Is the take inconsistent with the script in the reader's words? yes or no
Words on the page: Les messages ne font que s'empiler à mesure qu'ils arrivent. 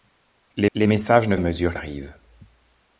yes